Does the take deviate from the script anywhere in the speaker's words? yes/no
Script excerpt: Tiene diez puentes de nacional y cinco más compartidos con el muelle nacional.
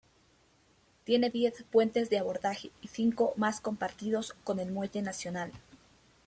yes